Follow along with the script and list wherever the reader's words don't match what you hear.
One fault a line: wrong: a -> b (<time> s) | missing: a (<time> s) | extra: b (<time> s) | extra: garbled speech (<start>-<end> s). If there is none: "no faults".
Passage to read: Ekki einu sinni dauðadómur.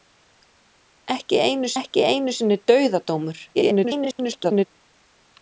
extra: ekki einu (1.8 s)
extra: garbled speech (3.5-4.7 s)